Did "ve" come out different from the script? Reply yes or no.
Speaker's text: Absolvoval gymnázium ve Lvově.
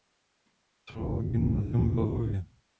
no